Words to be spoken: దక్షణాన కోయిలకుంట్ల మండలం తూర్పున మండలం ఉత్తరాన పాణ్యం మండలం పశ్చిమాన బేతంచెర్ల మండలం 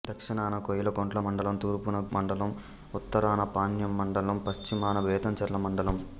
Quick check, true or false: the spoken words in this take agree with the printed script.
true